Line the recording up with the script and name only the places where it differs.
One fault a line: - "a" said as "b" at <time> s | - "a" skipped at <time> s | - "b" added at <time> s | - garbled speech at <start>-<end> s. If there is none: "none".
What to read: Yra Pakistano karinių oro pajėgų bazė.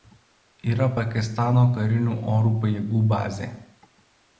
none